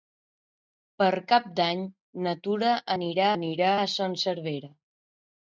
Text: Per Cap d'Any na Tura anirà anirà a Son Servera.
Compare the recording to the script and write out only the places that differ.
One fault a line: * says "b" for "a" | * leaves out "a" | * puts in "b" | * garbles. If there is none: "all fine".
all fine